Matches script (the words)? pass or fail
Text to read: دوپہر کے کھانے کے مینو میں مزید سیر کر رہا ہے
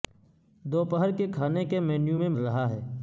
fail